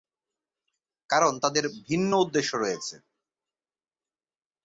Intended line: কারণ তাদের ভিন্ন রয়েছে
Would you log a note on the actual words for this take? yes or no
yes